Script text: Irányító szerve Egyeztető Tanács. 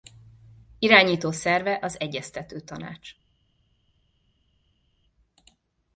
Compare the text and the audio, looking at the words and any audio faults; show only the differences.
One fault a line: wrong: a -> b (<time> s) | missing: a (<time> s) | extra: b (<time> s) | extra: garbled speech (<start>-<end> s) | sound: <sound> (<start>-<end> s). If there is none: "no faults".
extra: az (1.8 s)